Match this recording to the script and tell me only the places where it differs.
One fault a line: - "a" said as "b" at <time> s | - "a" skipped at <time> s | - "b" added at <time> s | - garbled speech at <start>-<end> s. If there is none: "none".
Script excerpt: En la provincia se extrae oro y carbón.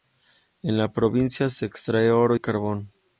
none